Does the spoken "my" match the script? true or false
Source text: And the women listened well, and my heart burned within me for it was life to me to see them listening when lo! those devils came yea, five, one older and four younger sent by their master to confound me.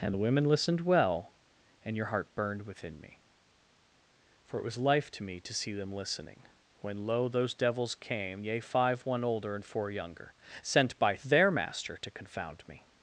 false